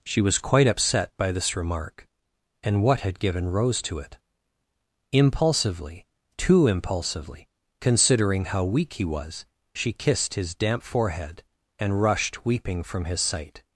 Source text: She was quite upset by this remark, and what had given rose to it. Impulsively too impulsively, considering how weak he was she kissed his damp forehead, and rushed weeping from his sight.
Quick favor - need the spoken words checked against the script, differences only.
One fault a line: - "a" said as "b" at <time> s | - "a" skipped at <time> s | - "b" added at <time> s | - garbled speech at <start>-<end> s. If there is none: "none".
none